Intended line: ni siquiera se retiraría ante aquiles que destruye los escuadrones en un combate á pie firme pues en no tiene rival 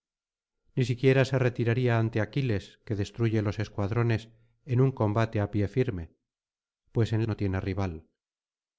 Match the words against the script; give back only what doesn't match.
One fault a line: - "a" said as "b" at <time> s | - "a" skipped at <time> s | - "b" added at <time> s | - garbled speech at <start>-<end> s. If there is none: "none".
none